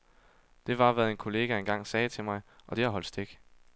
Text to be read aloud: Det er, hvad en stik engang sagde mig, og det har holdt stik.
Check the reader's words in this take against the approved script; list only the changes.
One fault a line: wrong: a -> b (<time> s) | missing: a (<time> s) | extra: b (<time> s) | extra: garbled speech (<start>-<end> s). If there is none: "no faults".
wrong: er -> var (0.8 s)
wrong: stik -> kollega (1.2 s)
extra: til (2.1 s)